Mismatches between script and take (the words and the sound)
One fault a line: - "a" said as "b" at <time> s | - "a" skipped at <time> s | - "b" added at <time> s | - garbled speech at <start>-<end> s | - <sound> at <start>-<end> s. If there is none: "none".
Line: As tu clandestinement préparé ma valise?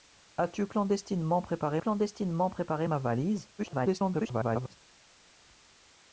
- "clandestinement préparé" added at 1.8 s
- garbled speech at 3.6-4.8 s